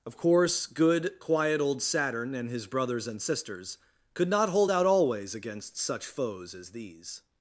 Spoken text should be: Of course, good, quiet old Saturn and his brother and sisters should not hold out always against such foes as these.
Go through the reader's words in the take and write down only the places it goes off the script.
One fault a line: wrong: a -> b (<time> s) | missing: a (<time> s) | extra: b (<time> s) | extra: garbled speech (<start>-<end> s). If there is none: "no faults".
wrong: brother -> brothers (2.7 s)
wrong: should -> could (4.1 s)